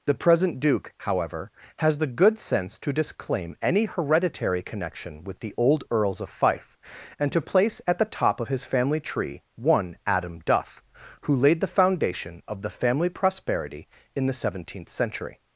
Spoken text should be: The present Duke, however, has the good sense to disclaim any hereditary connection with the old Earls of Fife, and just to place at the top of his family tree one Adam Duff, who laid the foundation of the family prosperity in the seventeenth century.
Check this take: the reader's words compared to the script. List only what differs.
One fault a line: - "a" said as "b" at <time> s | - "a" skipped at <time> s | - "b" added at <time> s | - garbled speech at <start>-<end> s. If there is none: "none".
- "just" skipped at 7.3 s